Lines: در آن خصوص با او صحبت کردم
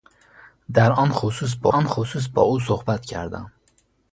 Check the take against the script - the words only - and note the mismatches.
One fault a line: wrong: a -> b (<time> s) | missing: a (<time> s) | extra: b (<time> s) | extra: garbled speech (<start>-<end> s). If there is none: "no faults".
extra: آن خصوص با (1.7 s)